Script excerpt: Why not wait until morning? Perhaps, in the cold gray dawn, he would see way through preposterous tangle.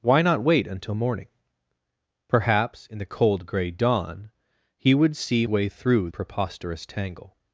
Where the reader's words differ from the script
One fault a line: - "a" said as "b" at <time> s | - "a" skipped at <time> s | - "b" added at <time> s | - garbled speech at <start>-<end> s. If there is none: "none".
none